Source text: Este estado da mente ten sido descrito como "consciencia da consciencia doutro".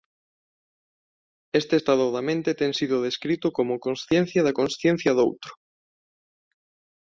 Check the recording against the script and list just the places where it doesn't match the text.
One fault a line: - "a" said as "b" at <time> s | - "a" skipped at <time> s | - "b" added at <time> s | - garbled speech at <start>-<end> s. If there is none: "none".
none